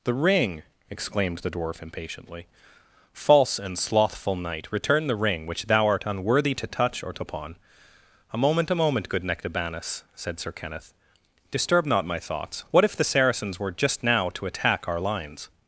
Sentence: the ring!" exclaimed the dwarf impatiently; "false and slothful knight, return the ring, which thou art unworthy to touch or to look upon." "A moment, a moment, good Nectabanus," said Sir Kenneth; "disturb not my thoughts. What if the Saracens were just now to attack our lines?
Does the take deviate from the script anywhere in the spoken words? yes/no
yes